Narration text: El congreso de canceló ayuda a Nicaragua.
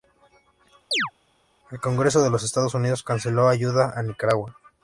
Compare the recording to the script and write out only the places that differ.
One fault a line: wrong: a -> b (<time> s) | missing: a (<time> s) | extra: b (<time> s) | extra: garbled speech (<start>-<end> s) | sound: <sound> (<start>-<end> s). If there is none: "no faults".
sound: chirp (0.9-1.1 s)
extra: los Estados Unidos (2.3 s)